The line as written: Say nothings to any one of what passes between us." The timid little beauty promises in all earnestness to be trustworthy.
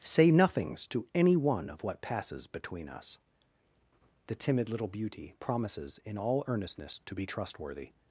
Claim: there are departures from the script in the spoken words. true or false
false